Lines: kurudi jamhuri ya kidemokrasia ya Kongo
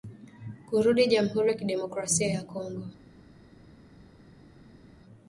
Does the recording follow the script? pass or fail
pass